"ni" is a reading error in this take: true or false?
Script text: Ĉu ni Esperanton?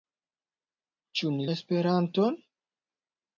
false